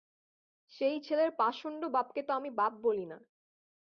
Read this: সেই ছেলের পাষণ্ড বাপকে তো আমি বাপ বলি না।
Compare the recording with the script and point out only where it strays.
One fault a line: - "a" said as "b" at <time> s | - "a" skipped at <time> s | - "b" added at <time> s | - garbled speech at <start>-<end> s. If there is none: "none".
none